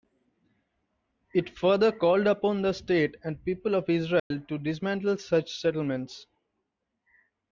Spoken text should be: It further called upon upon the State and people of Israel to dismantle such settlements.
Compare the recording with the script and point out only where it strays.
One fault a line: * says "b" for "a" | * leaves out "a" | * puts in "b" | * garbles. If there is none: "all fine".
* leaves out "upon"